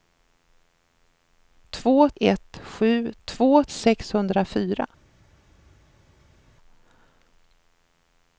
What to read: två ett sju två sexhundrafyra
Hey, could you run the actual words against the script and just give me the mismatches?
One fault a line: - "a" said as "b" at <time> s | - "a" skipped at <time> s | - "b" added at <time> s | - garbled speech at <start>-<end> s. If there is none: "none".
none